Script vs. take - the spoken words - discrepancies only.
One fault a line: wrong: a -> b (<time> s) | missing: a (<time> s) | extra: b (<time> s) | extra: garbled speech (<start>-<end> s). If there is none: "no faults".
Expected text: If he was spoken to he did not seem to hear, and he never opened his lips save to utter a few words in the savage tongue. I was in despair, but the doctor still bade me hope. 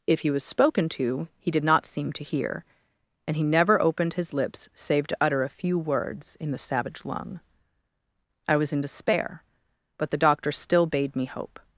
wrong: tongue -> lung (7.0 s)